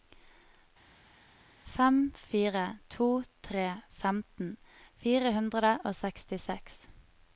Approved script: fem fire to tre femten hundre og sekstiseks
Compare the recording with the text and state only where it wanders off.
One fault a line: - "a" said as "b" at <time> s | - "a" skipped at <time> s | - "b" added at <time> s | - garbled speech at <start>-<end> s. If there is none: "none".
- "fire" added at 5.0 s